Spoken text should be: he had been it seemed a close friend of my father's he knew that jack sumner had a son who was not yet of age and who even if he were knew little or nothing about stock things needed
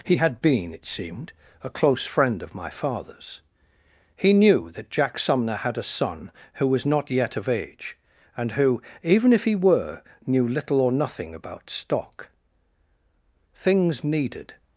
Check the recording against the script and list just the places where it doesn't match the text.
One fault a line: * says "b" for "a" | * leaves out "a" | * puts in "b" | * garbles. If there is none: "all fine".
all fine